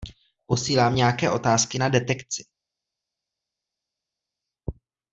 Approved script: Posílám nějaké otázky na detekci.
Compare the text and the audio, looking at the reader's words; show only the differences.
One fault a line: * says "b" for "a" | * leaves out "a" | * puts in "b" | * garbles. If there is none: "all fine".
all fine